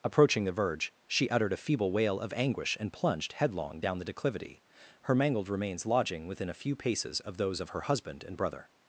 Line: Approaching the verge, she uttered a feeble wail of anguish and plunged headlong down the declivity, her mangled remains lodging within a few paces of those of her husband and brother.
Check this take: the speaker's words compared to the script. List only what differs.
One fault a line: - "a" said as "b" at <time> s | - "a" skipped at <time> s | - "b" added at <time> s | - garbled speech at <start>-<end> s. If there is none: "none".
none